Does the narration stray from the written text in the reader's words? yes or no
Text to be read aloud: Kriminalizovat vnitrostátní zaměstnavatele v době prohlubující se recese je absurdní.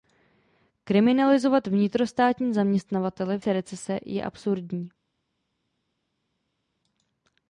yes